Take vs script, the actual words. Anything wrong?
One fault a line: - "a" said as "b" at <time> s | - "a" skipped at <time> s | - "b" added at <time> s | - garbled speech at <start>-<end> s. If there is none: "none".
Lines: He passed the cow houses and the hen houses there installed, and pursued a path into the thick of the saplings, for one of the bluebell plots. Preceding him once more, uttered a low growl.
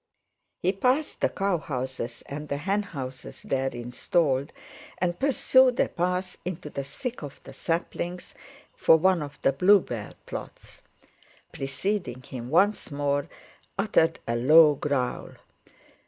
none